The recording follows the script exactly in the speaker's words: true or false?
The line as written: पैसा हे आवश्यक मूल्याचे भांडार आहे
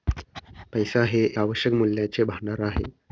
true